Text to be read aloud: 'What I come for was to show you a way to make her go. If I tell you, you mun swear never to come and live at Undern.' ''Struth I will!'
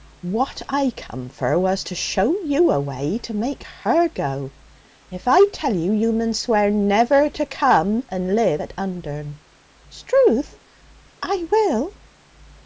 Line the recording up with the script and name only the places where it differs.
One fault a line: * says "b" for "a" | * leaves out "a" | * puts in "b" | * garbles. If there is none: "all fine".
all fine